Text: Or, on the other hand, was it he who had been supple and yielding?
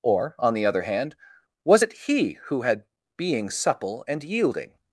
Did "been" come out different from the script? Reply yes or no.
yes